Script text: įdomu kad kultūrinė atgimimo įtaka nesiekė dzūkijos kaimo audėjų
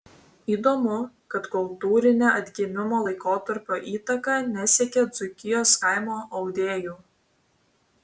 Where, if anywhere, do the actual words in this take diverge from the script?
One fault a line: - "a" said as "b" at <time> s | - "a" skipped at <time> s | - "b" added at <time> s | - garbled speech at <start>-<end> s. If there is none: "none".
- "laikotarpio" added at 3.1 s